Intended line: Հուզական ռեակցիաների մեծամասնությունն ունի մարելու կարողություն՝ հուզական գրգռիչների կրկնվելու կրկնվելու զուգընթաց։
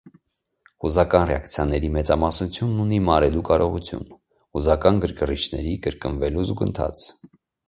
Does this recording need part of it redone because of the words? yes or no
yes